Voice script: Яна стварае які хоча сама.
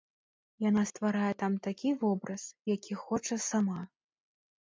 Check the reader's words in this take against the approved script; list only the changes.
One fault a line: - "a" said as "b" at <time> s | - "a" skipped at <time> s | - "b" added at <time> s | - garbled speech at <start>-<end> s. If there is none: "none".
- "там такі вобраз" added at 1.4 s